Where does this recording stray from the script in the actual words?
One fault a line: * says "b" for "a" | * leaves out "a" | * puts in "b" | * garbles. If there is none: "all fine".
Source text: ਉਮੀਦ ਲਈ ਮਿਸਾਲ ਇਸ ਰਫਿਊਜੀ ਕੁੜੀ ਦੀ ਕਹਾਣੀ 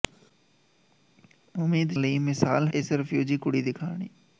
all fine